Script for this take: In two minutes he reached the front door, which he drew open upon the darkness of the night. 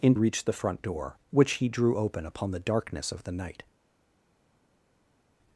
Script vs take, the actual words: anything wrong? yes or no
yes